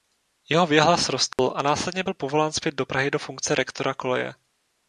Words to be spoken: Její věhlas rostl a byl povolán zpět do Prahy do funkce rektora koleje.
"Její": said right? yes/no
no